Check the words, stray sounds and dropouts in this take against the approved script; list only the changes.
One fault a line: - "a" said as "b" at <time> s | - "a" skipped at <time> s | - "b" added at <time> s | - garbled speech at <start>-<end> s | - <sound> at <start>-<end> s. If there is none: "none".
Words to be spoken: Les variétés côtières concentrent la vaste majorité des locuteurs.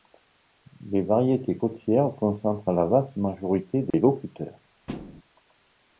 - dropout at 3.9-3.9 s
- thud at 4.9-5.2 s